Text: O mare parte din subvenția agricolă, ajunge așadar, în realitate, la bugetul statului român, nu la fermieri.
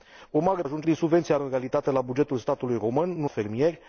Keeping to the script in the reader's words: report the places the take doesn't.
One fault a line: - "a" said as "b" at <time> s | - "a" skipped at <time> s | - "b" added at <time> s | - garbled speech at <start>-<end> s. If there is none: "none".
- "parte" said as "ajunge" at 0.6 s
- "agricolă ajunge așadar" skipped at 1.4 s
- "la" skipped at 3.3 s